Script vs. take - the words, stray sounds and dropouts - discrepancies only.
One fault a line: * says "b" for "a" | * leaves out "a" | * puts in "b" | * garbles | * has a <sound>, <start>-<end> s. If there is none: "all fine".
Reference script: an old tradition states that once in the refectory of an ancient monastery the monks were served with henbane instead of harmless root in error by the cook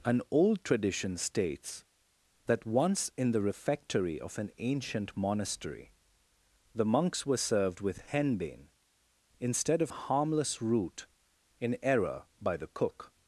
all fine